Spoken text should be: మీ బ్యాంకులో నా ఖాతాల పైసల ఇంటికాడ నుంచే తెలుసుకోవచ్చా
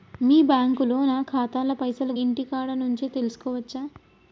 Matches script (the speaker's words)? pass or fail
pass